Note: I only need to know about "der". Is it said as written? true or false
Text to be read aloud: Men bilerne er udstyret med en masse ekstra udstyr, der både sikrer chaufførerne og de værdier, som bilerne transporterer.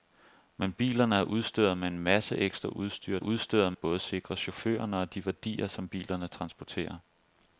false